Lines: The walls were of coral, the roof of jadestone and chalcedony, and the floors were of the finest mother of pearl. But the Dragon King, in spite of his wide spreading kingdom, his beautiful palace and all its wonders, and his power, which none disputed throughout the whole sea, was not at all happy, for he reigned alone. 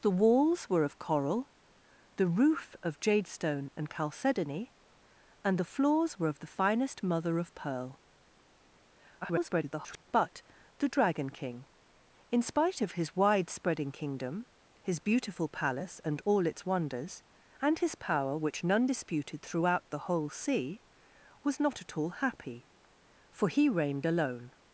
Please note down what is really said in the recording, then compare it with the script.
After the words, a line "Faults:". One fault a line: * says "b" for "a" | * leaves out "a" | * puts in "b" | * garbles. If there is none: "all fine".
The walls were of coral, the roof of jadestone and chalcedony, and the floors were of the finest mother of pearl. [garbled] But the Dragon King, in spite of his wide spreading kingdom, his beautiful palace and all its wonders, and his power, which none disputed throughout the whole sea, was not at all happy, for he reigned alone.
Faults:
* garbles